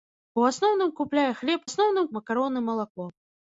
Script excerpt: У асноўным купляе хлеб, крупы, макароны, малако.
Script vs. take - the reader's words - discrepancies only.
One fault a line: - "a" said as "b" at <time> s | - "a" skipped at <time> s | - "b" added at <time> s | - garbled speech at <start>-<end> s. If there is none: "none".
- "крупы" said as "асноўным" at 1.7 s